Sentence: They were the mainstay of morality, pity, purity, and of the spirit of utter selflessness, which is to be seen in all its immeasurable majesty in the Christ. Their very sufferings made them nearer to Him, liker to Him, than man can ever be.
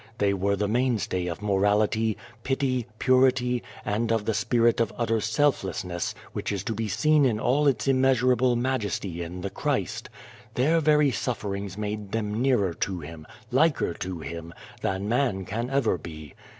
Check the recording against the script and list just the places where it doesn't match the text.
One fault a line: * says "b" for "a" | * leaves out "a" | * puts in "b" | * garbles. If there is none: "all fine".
all fine